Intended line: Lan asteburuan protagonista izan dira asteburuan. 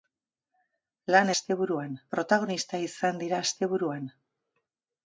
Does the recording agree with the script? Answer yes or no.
yes